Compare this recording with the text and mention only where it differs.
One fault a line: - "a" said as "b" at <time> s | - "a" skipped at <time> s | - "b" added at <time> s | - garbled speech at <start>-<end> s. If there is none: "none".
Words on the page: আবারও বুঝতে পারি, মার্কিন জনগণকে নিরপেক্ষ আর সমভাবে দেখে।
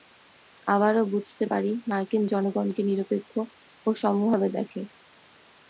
- "আর" said as "ও" at 3.9 s